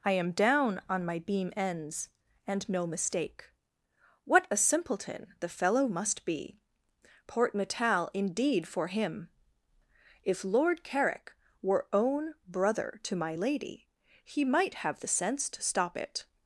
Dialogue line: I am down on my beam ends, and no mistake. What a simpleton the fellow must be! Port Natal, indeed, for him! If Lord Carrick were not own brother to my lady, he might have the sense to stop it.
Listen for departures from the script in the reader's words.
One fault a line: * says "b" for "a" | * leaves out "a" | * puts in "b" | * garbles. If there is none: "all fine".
* leaves out "not"